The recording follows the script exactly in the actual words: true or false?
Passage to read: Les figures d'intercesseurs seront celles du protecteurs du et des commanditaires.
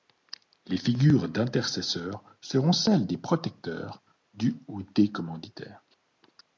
false